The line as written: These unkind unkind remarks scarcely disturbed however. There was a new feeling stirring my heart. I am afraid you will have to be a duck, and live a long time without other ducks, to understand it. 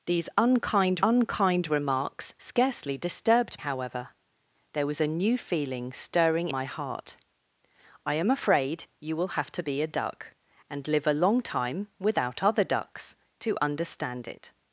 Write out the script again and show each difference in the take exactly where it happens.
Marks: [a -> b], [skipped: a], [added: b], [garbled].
These unkind unkind remarks scarcely disturbed however. There was a new feeling stirring my heart. I am afraid you will have to be a duck, and live a long time without other ducks, to understand it.